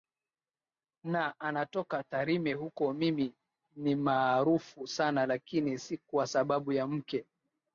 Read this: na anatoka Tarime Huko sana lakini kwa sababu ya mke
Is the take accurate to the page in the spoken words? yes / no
no